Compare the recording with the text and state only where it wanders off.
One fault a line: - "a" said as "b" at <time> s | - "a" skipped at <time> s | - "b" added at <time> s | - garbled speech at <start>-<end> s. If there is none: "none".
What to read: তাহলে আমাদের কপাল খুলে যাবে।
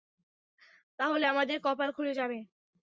none